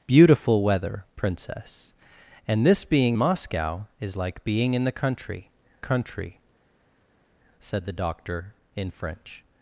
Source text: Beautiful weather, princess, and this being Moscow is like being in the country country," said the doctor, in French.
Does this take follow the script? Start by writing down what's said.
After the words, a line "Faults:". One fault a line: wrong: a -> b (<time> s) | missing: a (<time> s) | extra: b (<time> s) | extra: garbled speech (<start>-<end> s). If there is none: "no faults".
Beautiful weather, princess, and this being Moscow is like being in the country country," said the doctor, in French.
Faults:
no faults